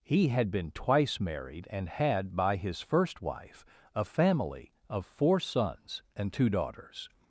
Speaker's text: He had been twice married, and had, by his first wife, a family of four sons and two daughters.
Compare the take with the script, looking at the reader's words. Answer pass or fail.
pass